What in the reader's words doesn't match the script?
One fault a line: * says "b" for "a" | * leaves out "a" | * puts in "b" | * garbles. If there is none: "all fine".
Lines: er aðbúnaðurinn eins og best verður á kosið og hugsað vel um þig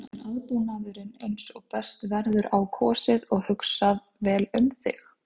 all fine